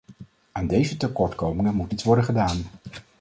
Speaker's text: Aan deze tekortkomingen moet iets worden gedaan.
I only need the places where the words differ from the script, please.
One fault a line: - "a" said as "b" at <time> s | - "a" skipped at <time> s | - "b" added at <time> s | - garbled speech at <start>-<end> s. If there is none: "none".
none